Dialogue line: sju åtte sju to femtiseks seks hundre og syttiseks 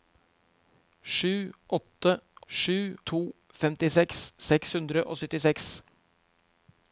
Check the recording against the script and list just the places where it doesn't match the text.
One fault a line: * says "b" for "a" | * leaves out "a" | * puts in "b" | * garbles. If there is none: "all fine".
all fine